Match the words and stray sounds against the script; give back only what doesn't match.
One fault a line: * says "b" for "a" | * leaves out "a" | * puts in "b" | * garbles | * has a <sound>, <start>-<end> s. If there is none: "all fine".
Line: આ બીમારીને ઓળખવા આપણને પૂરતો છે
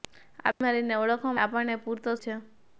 all fine